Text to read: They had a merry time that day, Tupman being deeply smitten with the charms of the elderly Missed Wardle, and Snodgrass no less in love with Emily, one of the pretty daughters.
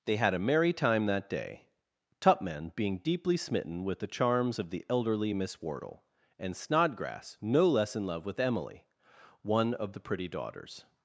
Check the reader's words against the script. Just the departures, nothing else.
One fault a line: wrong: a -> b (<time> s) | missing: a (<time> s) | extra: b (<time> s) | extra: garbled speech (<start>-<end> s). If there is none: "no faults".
wrong: Missed -> Miss (5.3 s)